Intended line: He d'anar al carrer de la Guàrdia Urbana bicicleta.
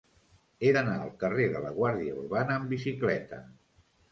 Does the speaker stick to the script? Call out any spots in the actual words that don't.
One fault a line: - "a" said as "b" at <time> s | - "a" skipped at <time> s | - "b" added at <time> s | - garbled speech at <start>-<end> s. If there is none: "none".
- "amb" added at 2.6 s